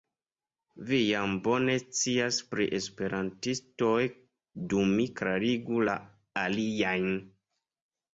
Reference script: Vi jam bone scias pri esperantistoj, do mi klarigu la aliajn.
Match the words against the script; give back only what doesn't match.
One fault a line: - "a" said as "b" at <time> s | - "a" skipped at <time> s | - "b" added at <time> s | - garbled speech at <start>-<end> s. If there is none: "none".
none